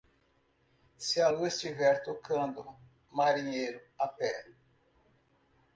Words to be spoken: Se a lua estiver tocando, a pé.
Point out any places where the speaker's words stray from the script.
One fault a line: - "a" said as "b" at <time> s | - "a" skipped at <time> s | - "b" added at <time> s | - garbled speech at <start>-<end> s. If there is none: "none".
- "marinheiro" added at 3.1 s